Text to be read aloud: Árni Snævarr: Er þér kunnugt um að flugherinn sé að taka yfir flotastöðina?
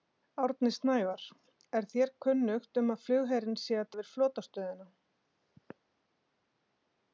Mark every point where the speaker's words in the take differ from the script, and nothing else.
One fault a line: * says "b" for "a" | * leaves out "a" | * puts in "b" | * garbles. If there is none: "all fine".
* leaves out "taka"